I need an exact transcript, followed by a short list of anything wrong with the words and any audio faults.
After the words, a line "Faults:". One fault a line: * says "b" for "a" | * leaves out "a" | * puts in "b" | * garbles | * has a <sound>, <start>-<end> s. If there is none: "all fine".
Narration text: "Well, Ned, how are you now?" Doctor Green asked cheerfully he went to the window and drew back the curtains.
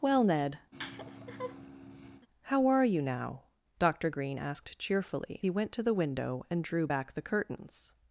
"Well, Ned, how are you now?" Doctor Green asked cheerfully he went to the window and drew back the curtains.
Faults:
* has a laugh, 0.7-2.3 s